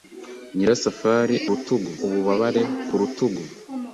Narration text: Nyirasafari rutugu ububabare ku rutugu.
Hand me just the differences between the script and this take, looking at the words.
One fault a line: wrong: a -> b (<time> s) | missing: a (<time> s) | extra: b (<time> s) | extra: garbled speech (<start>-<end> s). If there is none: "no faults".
no faults